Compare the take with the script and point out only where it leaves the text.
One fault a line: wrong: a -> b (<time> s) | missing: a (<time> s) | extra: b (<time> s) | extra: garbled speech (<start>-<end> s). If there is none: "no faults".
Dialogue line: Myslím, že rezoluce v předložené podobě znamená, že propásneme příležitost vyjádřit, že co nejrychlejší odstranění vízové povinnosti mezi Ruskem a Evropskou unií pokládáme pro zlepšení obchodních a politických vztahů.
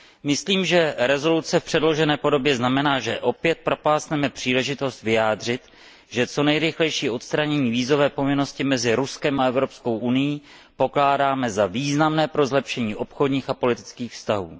extra: opět (3.2 s)
extra: za významné (11.5 s)